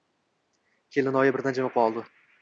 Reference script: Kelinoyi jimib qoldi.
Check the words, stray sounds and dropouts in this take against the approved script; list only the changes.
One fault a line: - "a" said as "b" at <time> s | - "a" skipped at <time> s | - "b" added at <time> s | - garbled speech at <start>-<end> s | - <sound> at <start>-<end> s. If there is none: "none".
- "birdan" added at 1.3 s